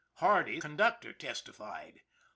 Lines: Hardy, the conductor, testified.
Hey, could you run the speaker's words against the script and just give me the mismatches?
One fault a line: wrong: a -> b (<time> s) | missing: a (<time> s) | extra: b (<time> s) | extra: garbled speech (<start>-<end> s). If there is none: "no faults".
missing: the (0.6 s)